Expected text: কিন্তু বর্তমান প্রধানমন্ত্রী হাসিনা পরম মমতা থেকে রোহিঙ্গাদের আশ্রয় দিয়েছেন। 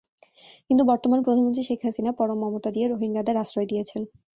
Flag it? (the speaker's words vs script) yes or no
yes